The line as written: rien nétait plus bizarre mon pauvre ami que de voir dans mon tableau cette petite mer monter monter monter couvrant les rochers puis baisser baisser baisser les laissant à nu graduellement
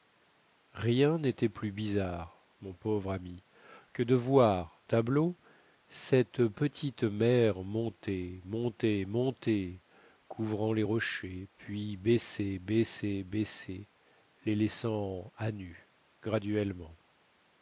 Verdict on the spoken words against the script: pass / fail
fail